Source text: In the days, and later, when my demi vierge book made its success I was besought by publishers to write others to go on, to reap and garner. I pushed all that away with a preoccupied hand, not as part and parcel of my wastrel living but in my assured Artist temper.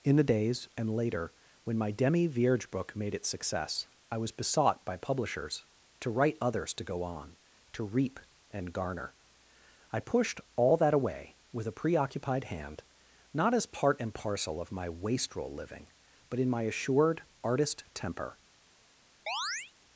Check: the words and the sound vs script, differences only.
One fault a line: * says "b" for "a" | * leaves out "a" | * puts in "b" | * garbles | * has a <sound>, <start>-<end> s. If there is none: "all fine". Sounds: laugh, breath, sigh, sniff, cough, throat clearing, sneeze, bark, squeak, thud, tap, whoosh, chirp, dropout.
* has a chirp, 19.3-19.7 s